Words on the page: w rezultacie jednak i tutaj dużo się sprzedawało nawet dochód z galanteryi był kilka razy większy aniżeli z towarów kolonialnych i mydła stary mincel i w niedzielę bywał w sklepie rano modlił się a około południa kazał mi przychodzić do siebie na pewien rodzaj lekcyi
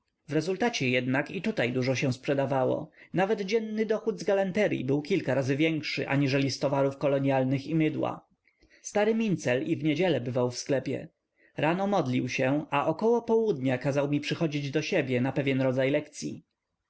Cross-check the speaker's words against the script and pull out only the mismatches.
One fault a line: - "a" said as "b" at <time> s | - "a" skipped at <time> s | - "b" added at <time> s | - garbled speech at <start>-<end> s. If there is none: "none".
- "dzienny" added at 3.4 s